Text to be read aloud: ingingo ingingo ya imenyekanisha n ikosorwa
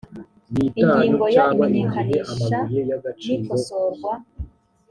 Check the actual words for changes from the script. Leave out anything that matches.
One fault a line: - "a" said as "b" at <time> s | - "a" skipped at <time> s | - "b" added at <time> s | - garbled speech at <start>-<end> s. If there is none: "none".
- "ingingo" skipped at 1.2 s